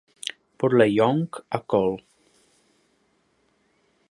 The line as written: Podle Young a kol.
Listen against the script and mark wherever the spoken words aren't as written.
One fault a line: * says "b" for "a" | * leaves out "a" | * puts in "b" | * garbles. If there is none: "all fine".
all fine